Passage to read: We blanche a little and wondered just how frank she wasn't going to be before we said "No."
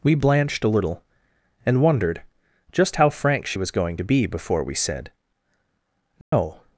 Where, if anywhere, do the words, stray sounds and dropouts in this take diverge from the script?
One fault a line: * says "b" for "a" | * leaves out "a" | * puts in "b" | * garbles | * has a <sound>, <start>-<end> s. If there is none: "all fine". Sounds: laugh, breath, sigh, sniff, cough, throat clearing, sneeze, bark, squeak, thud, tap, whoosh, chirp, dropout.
* says "blanched" for "blanche"
* says "was" for "wasn't"
* has a dropout, 6.2-6.3 s